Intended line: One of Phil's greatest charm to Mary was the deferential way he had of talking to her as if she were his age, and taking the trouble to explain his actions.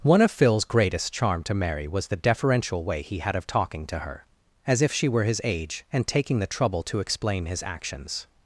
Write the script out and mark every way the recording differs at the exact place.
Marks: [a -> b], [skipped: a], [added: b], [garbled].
One of Phil's greatest charm to Mary was the deferential way he had of talking to her as if she were his age, and taking the trouble to explain his actions.